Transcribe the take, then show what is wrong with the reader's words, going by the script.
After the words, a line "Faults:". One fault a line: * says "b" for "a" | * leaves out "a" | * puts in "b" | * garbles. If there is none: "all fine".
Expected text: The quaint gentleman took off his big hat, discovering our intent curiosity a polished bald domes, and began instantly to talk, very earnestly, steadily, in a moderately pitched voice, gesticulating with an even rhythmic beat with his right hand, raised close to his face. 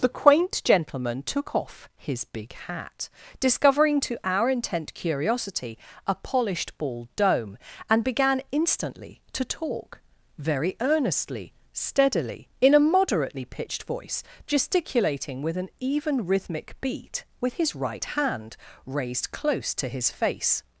The quaint gentleman took off his big hat, discovering to our intent curiosity a polished bald dome, and began instantly to talk, very earnestly, steadily, in a moderately pitched voice, gesticulating with an even rhythmic beat with his right hand, raised close to his face.
Faults:
* puts in "to"
* says "dome" for "domes"